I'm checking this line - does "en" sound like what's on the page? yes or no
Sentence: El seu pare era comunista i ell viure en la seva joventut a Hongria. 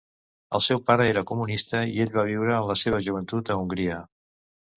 yes